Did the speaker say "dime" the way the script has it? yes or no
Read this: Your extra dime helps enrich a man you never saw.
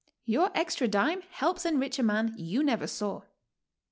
yes